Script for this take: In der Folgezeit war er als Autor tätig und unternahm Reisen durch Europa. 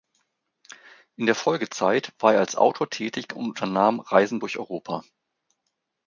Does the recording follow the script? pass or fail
pass